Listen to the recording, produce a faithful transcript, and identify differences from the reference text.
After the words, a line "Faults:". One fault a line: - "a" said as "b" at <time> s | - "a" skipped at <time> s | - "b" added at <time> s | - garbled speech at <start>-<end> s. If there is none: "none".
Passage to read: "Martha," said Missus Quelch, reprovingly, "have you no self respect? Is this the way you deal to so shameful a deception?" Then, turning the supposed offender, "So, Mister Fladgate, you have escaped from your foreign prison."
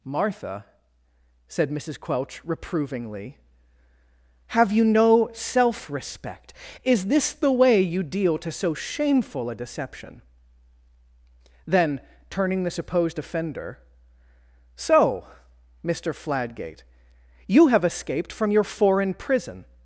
"Martha," said Missus Quelch, reprovingly, "have you no self respect? Is this the way you deal to so shameful a deception?" Then, turning the supposed offender, "So, Mister Fladgate, you have escaped from your foreign prison."
Faults:
none